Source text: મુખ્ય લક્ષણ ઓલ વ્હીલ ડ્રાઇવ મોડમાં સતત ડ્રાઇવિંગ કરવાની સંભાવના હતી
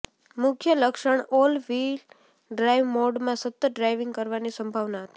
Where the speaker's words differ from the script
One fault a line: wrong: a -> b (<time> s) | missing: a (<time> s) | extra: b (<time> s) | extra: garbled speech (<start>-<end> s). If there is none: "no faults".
no faults